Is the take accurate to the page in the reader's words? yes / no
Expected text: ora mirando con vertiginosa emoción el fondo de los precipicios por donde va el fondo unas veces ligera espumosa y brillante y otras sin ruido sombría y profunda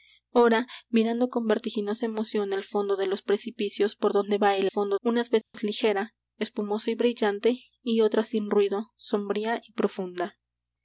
yes